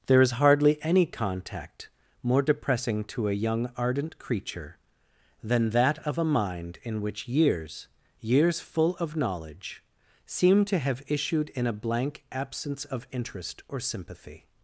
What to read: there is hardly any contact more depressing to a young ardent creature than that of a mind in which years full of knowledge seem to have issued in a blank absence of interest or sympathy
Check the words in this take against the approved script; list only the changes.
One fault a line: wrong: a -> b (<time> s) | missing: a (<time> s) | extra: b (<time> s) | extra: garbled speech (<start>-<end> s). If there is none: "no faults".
extra: years (8.2 s)